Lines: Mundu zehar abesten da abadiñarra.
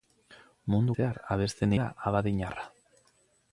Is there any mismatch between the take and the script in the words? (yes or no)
no